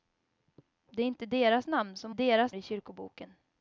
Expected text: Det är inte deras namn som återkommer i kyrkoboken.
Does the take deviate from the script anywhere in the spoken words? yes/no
yes